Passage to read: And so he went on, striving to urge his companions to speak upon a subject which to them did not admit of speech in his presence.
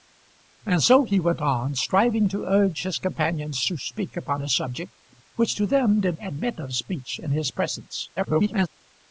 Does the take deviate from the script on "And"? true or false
false